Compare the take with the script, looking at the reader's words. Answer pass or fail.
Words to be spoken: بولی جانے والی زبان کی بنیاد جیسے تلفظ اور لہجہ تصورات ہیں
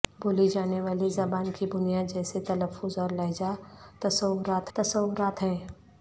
fail